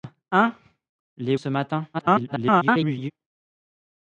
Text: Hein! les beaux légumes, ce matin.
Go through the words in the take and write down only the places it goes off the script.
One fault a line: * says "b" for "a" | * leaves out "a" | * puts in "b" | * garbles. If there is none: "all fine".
* leaves out "beaux légumes"
* garbles